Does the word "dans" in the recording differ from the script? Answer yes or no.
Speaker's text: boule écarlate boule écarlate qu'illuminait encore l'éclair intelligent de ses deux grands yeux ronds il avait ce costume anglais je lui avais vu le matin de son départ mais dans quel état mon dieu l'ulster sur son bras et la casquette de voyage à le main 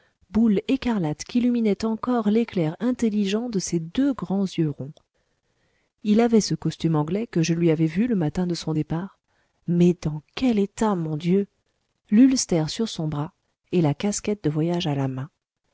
no